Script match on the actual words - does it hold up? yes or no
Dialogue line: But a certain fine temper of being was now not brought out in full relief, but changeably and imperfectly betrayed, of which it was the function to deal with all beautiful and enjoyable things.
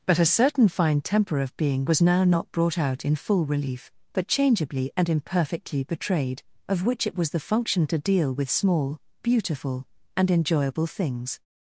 no